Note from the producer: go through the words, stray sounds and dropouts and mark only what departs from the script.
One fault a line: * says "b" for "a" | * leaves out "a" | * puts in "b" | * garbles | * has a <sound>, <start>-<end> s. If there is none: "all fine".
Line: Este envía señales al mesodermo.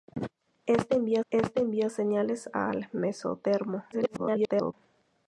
* puts in "este envía"
* garbles